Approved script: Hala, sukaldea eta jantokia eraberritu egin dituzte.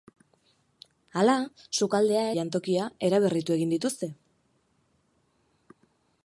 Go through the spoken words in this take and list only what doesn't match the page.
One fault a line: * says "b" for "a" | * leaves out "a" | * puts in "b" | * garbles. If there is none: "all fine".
* leaves out "eta"